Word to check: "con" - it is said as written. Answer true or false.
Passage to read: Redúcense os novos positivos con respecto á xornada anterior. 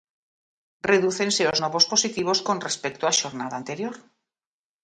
true